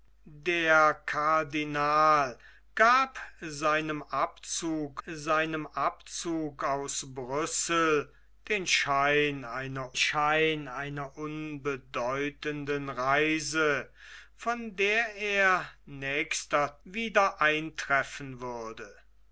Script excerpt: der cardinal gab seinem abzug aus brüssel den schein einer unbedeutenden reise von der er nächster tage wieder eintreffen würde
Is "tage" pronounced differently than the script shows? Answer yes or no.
yes